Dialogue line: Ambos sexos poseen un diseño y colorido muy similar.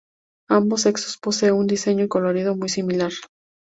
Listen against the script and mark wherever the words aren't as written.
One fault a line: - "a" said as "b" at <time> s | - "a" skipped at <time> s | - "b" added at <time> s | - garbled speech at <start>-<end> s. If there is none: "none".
none